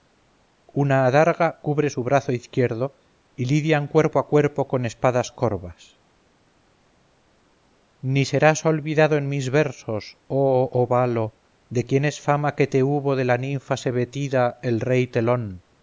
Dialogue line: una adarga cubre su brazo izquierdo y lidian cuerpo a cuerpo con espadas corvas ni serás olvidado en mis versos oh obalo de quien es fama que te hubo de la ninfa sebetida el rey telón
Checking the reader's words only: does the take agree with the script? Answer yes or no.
yes